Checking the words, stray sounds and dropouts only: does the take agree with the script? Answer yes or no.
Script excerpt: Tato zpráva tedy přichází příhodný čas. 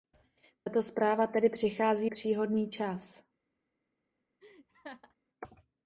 no